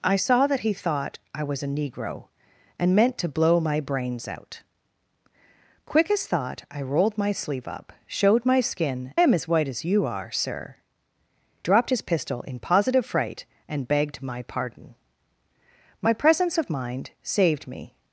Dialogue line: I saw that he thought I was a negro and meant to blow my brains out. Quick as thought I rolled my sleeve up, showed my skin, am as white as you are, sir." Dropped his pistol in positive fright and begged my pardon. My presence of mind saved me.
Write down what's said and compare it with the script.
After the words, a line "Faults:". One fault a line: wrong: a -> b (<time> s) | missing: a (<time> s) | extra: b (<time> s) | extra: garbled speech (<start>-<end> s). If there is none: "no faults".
I saw that he thought I was a negro and meant to blow my brains out. Quick as thought I rolled my sleeve up, showed my skin, am as white as you are, sir." Dropped his pistol in positive fright and begged my pardon. My presence of mind saved me.
Faults:
no faults